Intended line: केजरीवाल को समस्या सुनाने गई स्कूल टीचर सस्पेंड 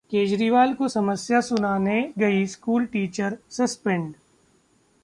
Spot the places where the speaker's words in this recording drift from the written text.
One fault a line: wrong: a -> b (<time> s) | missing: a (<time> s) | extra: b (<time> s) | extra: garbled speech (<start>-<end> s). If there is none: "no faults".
no faults